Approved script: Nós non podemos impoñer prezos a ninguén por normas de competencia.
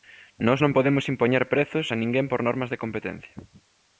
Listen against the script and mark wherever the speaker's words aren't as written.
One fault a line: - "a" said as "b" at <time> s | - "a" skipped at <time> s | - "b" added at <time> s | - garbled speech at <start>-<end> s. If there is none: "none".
none